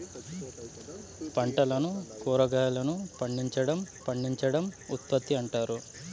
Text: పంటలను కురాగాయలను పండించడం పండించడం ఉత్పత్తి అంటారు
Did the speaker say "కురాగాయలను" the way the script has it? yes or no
yes